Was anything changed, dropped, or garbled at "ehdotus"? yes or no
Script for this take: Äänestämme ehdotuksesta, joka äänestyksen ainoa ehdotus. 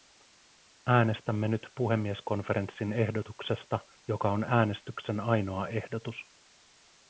no